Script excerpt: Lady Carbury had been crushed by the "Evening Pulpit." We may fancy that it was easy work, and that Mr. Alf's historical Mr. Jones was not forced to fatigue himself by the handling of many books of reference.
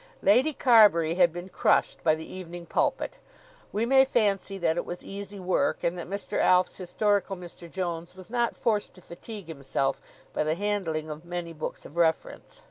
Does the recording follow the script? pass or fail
pass